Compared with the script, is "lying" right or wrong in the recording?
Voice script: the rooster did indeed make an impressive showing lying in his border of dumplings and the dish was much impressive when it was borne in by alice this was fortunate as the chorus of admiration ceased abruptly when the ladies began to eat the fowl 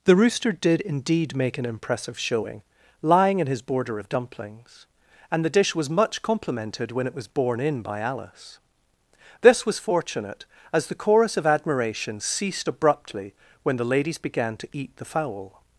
right